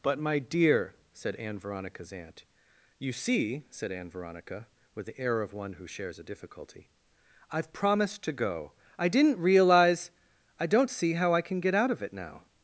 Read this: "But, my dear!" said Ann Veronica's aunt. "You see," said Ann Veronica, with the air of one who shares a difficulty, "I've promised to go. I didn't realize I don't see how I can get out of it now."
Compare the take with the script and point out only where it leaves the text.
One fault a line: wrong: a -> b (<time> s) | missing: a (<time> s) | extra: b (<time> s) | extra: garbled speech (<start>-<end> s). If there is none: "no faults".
no faults